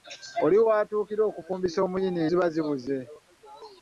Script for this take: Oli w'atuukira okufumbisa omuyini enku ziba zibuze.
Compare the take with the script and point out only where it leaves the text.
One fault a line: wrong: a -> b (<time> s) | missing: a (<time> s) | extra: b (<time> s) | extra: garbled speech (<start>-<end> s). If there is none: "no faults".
missing: enku (2.2 s)